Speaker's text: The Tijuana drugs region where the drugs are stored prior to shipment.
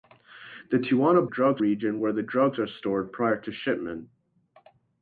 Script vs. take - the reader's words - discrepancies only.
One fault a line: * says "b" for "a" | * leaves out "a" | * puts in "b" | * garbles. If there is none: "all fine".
all fine